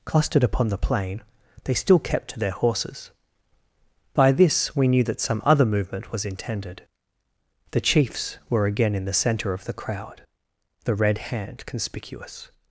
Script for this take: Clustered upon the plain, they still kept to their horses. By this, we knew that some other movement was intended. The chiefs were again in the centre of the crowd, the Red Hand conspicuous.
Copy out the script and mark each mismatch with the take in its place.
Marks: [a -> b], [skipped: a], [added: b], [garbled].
Clustered upon the plain, they still kept to their horses. By this, we knew that some other movement was intended. The chiefs were again in the centre of the crowd, the Red Hand conspicuous.